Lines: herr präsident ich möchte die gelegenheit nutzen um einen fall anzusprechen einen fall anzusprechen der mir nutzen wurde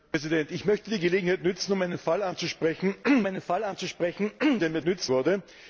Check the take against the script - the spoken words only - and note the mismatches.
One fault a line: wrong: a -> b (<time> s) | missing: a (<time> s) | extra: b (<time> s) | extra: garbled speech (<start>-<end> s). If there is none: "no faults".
no faults